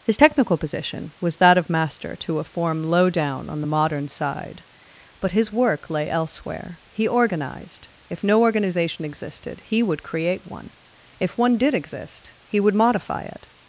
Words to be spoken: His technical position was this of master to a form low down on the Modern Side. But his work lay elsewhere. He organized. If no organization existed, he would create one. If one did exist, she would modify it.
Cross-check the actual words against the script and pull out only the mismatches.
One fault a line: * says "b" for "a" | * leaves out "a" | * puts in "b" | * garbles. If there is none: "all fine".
* says "that" for "this"
* says "he" for "she"